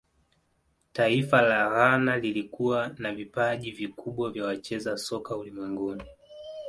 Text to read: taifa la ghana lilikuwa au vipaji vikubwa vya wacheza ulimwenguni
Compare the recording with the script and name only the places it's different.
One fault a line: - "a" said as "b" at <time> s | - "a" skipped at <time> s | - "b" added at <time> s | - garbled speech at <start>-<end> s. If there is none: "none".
- "au" said as "na" at 3.0 s
- "soka" added at 5.0 s